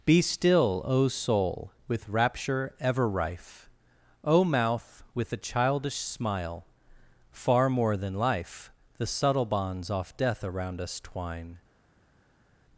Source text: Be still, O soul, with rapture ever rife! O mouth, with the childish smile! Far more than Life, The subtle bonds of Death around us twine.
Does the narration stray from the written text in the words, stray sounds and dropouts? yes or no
yes